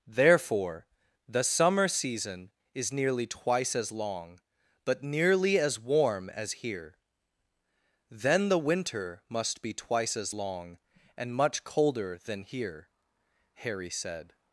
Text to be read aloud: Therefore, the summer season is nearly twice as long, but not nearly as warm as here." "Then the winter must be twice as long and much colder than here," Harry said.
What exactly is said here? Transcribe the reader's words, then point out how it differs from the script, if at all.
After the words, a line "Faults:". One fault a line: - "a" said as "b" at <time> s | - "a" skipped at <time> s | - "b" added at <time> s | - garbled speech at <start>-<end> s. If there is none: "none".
Therefore, the summer season is nearly twice as long, but nearly as warm as here." "Then the winter must be twice as long and much colder than here," Harry said.
Faults:
- "not" skipped at 5.0 s